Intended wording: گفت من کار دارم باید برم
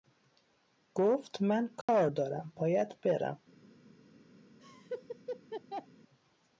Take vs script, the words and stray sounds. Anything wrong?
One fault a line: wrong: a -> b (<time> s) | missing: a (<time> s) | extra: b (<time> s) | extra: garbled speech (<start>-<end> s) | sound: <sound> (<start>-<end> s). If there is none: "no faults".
sound: dropout (1.8-1.9 s)
sound: laugh (4.6-5.9 s)